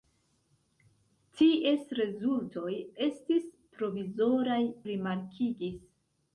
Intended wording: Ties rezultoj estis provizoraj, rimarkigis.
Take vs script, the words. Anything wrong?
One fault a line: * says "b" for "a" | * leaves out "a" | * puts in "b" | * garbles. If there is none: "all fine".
all fine